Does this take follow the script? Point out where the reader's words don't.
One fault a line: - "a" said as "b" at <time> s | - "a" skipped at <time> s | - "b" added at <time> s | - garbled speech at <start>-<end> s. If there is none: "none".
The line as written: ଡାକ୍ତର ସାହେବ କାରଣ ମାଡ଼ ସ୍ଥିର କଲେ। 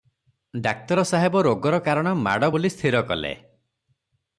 - "ରୋଗର" added at 1.4 s
- "ବୋଲି" added at 2.5 s